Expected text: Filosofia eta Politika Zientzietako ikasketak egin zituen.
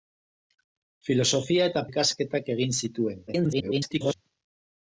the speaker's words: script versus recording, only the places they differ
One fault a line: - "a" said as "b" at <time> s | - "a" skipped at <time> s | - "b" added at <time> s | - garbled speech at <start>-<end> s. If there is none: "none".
- "Politika Zientzietako" skipped at 1.8 s
- garbled speech at 3.3-4.1 s